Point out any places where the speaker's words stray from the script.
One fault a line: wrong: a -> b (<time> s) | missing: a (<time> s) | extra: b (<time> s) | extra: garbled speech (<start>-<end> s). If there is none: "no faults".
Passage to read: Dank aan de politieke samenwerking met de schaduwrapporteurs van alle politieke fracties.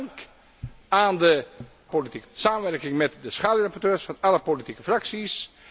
no faults